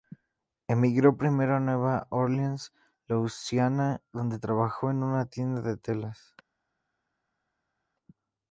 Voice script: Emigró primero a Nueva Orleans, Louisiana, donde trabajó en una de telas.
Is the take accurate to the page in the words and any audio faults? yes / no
no